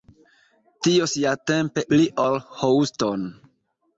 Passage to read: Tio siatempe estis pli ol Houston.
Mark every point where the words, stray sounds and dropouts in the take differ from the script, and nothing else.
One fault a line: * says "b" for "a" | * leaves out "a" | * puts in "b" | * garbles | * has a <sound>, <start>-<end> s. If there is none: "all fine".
* leaves out "estis"